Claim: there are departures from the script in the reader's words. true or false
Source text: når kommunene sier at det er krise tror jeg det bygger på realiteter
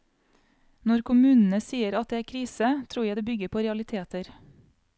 false